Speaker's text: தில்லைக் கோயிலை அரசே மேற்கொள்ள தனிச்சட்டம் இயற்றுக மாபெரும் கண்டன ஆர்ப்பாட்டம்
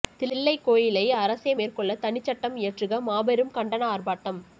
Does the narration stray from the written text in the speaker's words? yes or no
no